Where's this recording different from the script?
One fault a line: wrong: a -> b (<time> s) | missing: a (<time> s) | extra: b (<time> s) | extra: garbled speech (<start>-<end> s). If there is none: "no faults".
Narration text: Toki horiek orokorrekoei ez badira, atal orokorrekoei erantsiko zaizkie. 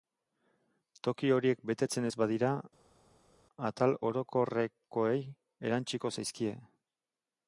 wrong: orokorrekoei -> betetzen (1.7 s)